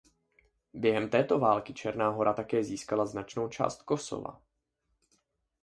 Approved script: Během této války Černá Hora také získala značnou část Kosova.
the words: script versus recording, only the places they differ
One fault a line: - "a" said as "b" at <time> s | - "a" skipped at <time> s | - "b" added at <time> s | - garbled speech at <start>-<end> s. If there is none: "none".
none